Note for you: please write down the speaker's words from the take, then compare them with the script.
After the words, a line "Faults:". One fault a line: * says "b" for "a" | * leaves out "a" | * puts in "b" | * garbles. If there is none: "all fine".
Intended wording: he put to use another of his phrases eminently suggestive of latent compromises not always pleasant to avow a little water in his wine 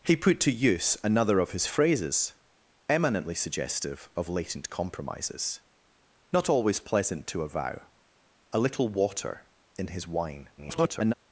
he put to use another of his phrases eminently suggestive of latent compromises not always pleasant to avow a little water in his wine [garbled]
Faults:
* garbles